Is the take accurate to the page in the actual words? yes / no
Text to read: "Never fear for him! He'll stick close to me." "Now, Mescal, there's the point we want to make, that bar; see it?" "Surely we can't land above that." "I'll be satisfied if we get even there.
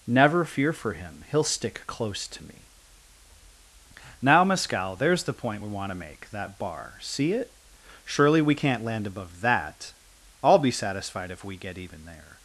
yes